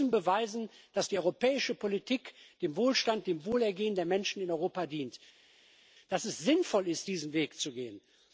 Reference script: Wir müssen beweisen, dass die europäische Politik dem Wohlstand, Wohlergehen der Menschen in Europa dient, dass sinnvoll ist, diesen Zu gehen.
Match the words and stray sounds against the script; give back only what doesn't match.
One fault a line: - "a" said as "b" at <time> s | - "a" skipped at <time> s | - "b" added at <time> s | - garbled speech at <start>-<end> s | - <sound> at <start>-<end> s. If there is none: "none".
- "dem" added at 3.3 s
- "es" added at 6.2 s
- "Weg" added at 7.3 s